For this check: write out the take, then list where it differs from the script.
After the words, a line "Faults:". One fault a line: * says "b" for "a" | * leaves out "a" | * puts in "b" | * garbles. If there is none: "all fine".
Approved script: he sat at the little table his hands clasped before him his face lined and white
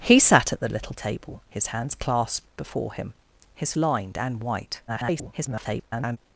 he sat at the little table his hands clasped before him his lined and white [garbled]
Faults:
* leaves out "face"
* garbles